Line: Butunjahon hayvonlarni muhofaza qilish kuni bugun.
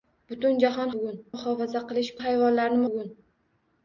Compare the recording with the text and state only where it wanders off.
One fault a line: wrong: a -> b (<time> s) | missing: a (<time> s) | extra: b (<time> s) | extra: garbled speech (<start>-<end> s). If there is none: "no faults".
wrong: hayvonlarni -> bugun (1.0 s)
wrong: kuni -> hayvonlarni (2.2 s)